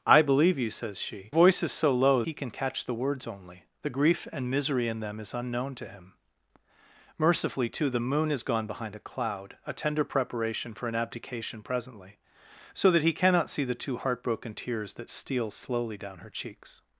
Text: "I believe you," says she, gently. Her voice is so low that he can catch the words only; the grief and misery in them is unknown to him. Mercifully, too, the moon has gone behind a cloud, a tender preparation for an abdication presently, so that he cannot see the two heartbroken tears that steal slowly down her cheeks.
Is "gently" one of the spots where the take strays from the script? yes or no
yes